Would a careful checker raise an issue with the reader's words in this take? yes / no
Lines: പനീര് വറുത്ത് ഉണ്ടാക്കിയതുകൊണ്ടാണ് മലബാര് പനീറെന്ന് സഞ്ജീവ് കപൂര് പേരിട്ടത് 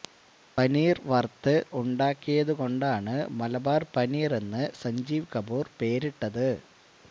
no